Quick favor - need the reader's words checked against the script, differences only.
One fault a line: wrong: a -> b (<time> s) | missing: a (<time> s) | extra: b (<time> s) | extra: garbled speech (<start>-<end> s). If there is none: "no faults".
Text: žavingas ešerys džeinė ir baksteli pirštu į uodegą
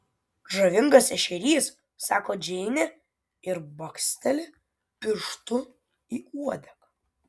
extra: sako (2.1 s)